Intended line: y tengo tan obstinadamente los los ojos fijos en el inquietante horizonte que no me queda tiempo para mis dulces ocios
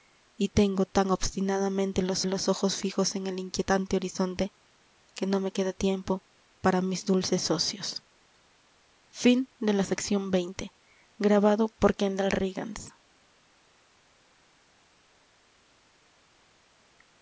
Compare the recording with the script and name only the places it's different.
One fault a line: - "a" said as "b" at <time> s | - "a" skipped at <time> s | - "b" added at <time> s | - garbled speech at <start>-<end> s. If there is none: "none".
none